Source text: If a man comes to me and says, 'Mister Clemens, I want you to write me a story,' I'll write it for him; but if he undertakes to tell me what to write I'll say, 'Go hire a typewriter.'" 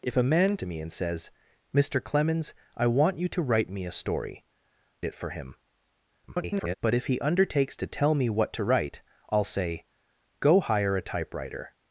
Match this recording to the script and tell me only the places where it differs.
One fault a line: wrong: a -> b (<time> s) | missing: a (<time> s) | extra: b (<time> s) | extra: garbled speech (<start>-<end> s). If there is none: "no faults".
missing: comes (0.6 s)
missing: I'll write (4.4 s)
extra: garbled speech (6.3-6.7 s)